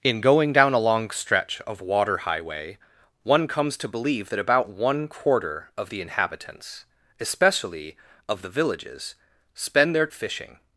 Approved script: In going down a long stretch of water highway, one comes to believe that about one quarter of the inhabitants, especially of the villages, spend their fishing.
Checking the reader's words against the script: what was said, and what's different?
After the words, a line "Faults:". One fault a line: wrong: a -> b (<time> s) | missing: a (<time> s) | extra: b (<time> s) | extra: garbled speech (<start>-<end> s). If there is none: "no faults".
In going down a long stretch of water highway, one comes to believe that about one quarter of the inhabitants, especially of the villages, spend their fishing.
Faults:
no faults